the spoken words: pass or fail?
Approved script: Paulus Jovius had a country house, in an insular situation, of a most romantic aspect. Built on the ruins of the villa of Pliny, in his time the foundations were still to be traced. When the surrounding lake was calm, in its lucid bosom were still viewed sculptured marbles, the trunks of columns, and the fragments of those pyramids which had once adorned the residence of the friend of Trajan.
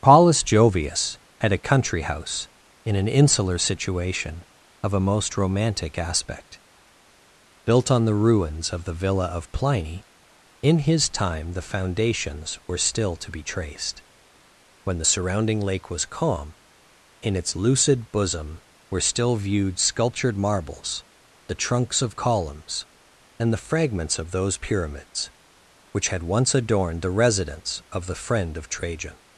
pass